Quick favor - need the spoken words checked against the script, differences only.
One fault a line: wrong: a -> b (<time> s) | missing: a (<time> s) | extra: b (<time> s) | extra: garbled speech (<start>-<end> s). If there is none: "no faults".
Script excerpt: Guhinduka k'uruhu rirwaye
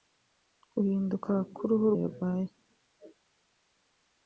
no faults